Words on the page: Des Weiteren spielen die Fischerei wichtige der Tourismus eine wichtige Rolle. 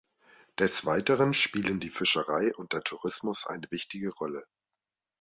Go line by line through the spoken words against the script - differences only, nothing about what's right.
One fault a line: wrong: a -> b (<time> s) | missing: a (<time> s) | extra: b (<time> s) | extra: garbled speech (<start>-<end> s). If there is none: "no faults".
wrong: wichtige -> und (2.5 s)